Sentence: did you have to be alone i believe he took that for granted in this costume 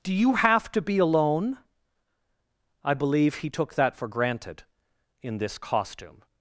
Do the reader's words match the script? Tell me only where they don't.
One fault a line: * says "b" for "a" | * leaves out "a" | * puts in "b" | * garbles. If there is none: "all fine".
* says "do" for "did"